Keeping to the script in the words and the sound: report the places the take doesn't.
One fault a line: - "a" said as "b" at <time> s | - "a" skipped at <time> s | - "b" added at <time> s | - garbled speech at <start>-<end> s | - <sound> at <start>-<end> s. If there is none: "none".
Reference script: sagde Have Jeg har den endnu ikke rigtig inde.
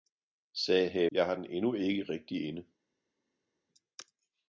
none